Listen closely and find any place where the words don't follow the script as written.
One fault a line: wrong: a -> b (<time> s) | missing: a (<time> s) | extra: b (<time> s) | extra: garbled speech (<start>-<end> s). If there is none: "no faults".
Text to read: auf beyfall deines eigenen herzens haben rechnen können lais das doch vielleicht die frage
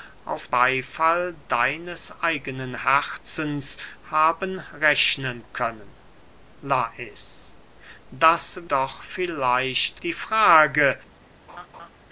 no faults